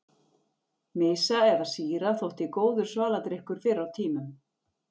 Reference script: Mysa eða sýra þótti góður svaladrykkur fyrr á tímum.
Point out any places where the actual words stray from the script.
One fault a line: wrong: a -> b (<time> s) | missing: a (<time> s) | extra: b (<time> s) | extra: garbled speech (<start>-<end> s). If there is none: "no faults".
no faults